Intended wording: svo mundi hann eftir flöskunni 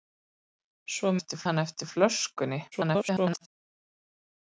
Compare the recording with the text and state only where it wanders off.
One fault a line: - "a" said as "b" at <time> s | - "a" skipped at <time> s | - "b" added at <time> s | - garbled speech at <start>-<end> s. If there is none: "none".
- "mundi" said as "eftir" at 1.2 s
- garbled speech at 2.7-3.5 s